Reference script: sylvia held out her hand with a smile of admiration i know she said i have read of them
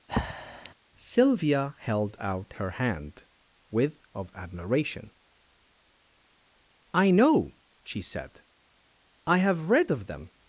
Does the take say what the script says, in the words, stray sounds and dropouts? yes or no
no